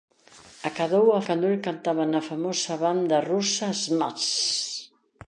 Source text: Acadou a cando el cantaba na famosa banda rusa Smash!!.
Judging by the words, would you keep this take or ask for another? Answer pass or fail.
pass